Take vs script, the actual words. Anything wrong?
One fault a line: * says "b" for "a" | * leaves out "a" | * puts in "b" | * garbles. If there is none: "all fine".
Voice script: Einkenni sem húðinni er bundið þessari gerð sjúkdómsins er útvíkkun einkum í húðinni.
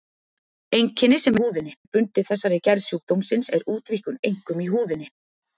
all fine